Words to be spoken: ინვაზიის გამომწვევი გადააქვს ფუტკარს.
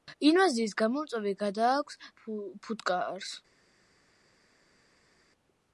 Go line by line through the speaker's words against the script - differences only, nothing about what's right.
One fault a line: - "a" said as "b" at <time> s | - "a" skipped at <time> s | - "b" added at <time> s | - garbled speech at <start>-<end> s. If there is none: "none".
none